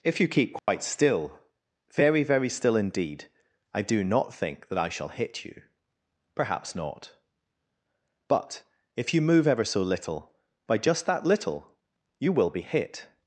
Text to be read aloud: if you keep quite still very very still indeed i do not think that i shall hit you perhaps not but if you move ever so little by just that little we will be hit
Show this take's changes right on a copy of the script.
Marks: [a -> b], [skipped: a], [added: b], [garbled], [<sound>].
if you keep quite [dropout] still very very still indeed i do not think that i shall hit you perhaps not but if you move ever so little by just that little [we -> you] will be hit